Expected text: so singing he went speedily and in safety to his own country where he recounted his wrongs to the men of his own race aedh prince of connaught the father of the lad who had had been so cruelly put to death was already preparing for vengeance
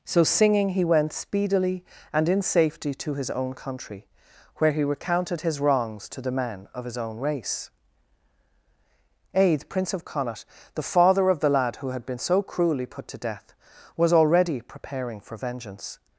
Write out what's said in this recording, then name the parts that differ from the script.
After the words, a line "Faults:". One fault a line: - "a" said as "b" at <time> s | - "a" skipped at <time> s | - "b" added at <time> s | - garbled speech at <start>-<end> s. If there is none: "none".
so singing he went speedily and in safety to his own country where he recounted his wrongs to the men of his own race aedh prince of connaught the father of the lad who had been so cruelly put to death was already preparing for vengeance
Faults:
- "had" skipped at 12.1 s